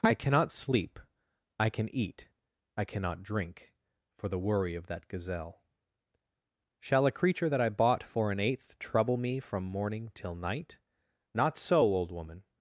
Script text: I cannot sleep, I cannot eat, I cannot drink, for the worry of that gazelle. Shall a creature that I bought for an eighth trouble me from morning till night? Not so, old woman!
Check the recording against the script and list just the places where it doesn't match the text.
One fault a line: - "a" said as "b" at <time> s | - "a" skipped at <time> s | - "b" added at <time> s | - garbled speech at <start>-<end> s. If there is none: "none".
- "cannot" said as "can" at 1.7 s